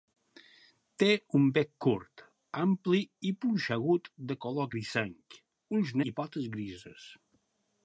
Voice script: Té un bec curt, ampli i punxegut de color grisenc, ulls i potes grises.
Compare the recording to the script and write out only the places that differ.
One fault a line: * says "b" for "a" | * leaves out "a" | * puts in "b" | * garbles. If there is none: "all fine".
all fine